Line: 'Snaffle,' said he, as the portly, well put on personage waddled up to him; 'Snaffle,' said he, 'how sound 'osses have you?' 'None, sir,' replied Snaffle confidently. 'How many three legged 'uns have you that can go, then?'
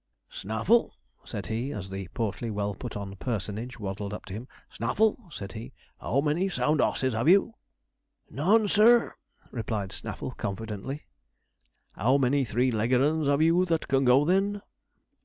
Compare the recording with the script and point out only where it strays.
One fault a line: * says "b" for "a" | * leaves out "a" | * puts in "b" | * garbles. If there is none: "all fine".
* puts in "many"